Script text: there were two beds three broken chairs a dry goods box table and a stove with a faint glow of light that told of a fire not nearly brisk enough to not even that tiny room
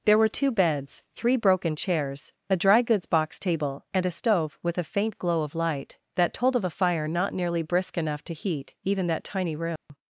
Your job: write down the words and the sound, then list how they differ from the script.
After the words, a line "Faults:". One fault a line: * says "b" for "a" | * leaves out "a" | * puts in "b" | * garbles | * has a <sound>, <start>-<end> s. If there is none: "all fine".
there were two beds three broken chairs a dry goods box table and a stove with a faint glow of light that told of a fire not nearly brisk enough to heat even that tiny room
Faults:
* says "heat" for "not"
* has a dropout, 9.8-9.9 s